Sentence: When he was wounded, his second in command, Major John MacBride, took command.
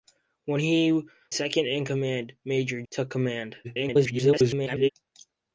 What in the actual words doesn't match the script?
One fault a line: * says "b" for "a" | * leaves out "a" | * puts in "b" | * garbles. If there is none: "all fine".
* leaves out "was wounded his"
* leaves out "John MacBride"
* garbles